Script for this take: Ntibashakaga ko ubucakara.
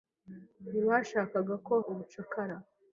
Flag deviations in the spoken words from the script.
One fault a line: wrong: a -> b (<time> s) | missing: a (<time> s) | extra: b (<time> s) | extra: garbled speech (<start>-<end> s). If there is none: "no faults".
no faults